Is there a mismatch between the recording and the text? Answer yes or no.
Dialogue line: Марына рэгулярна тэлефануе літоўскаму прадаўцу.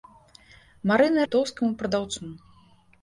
yes